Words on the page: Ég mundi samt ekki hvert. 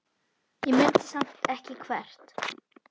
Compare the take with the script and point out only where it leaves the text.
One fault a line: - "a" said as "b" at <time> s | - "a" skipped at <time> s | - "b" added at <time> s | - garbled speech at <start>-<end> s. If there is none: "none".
none